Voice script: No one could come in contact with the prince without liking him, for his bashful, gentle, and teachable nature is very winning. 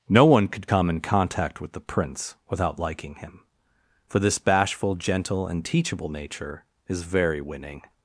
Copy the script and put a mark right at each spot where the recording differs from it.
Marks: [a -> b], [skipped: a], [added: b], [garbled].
No one could come in contact with the prince without liking him, for [his -> this] bashful, gentle, and teachable nature is very winning.